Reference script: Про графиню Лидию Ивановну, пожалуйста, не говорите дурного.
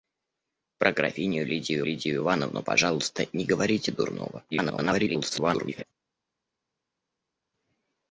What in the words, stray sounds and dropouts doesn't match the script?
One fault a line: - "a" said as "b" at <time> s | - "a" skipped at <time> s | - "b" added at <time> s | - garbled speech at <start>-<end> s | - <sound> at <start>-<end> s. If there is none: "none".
- "Лидию" added at 1.8 s
- garbled speech at 4.5-5.8 s